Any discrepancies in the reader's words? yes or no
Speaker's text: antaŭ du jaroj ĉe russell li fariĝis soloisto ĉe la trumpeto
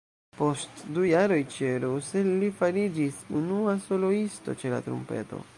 yes